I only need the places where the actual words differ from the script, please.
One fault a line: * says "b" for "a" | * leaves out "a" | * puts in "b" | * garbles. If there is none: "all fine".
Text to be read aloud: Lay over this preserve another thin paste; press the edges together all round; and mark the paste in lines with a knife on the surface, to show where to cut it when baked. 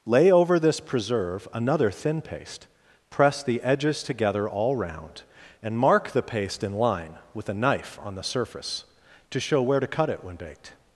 * says "line" for "lines"